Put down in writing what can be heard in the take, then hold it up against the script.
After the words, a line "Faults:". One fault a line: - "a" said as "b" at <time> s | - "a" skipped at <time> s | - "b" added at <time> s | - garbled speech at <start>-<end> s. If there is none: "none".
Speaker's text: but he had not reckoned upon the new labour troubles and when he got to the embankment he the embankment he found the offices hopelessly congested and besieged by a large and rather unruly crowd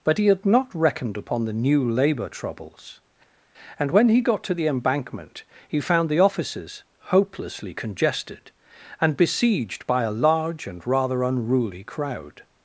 but he had not reckoned upon the new labour troubles and when he got to the embankment he found the offices hopelessly congested and besieged by a large and rather unruly crowd
Faults:
- "the embankment he" skipped at 5.8 s